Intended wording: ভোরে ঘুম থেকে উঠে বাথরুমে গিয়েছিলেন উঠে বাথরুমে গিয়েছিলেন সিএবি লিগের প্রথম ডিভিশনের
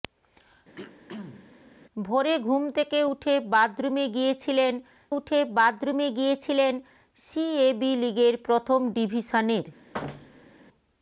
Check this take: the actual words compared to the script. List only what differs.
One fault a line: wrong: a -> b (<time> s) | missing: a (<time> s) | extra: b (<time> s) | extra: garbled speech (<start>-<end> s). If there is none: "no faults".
no faults